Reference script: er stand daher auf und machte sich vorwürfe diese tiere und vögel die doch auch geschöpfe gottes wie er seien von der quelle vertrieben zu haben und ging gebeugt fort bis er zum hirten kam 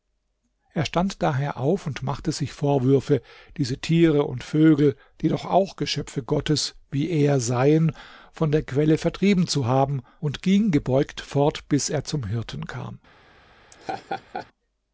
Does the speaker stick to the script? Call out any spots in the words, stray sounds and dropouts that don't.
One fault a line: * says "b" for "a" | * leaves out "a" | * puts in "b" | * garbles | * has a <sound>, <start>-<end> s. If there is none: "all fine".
* has a laugh, 13.7-14.5 s